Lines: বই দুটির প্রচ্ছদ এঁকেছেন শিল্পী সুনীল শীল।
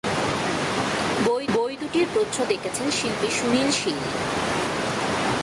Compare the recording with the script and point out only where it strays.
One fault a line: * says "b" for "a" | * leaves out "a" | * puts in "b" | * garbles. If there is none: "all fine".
* puts in "বই"